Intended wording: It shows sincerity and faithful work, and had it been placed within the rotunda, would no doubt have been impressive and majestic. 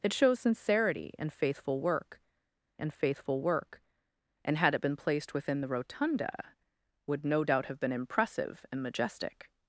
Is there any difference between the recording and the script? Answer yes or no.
yes